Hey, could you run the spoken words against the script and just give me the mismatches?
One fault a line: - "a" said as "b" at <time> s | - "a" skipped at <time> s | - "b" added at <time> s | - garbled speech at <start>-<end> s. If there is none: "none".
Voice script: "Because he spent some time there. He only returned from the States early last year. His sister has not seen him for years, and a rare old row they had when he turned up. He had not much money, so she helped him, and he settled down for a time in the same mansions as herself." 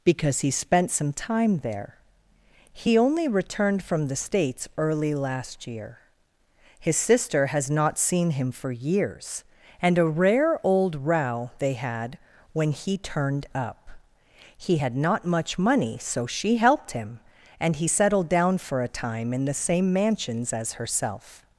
none